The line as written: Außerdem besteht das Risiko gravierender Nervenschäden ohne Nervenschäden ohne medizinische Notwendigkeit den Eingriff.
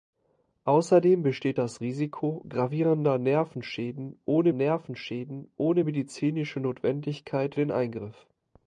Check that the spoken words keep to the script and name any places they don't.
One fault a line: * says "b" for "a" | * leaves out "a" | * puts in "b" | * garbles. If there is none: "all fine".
all fine